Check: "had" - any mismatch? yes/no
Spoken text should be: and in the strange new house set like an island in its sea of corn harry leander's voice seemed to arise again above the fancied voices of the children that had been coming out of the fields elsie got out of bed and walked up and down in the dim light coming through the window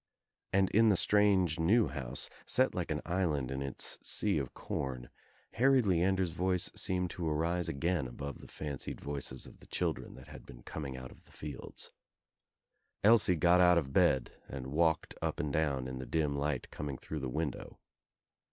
no